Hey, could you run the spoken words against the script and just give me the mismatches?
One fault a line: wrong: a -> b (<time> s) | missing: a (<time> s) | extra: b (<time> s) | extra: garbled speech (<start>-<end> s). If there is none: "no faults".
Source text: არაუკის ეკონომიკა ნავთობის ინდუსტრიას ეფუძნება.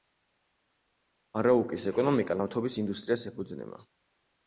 no faults